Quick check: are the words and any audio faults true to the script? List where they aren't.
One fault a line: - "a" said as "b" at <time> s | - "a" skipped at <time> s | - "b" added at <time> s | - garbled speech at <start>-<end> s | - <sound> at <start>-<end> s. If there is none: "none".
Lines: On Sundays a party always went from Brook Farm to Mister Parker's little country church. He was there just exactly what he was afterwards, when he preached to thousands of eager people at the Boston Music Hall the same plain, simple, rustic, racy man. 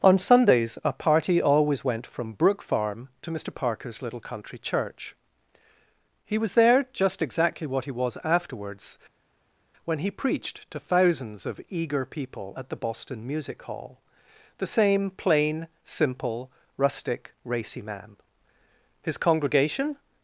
- "His congregation" added at 19.0 s